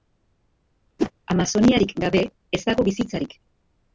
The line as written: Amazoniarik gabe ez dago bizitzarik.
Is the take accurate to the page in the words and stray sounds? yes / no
no